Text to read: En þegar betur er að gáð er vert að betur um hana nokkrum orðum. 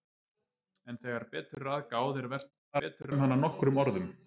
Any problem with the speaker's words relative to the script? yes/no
no